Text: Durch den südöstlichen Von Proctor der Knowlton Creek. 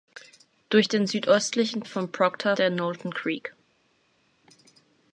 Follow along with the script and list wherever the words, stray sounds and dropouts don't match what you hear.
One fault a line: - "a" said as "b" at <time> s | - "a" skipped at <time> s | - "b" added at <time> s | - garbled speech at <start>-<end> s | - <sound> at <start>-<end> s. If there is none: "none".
none